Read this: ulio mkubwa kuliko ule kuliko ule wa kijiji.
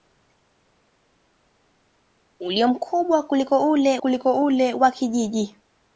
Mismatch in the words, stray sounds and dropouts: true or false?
false